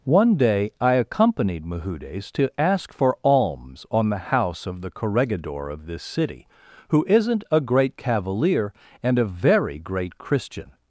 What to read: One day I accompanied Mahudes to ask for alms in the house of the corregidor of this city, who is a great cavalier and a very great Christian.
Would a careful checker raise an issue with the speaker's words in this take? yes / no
yes